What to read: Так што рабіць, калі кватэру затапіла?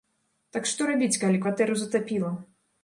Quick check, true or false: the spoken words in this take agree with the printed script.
true